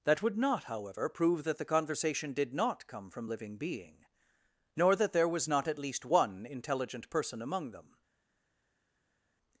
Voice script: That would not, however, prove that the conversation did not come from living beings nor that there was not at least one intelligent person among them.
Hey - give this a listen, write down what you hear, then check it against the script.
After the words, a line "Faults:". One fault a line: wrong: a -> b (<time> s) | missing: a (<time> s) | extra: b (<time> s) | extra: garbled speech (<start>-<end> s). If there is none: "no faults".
That would not, however, prove that the conversation did not come from living being nor that there was not at least one intelligent person among them.
Faults:
wrong: beings -> being (3.6 s)